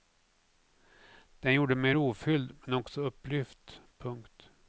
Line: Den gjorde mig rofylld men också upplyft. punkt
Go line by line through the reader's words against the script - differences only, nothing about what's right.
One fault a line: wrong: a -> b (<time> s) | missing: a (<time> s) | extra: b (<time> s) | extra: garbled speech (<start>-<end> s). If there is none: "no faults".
no faults